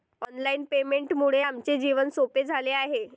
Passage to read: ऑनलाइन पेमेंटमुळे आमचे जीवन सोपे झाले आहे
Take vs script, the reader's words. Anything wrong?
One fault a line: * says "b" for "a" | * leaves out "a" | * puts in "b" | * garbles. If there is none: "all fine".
all fine